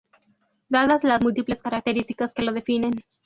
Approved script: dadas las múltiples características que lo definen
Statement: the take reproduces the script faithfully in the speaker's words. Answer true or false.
true